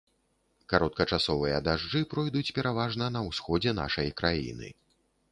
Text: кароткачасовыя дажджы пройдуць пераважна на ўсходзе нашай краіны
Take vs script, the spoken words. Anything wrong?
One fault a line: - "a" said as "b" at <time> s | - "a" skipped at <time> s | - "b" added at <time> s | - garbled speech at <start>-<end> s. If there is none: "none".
none